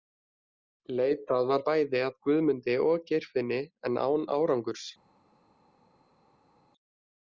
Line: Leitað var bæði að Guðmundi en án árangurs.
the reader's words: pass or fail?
fail